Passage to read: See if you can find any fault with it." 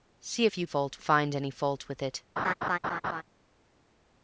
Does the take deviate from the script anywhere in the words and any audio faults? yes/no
yes